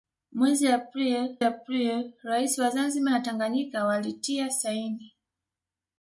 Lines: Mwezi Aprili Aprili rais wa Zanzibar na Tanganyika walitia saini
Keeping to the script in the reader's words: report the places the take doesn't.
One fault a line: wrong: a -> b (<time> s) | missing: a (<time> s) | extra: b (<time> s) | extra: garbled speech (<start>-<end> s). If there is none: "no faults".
no faults